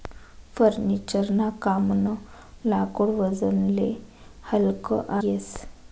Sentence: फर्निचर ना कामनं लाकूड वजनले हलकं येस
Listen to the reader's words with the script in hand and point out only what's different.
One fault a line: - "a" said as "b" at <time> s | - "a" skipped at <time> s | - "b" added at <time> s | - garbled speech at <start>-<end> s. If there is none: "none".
none